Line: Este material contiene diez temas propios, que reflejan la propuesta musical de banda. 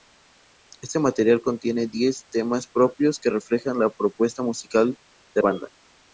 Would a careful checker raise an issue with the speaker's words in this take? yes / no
no